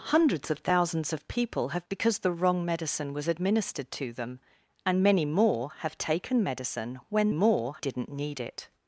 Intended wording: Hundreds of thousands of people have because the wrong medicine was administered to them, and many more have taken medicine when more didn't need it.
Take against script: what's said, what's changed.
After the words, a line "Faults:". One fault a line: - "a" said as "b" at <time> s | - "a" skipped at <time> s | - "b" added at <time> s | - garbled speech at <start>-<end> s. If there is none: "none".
Hundreds of thousands of people have because the wrong medicine was administered to them, and many more have taken medicine when more didn't need it.
Faults:
none